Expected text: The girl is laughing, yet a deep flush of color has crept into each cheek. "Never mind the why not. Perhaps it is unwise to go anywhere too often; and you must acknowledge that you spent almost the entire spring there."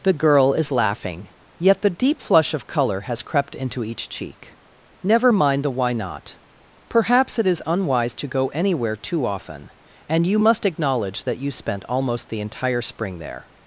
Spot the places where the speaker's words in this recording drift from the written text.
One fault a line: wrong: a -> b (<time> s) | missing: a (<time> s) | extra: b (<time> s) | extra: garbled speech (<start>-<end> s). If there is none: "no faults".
wrong: a -> the (1.8 s)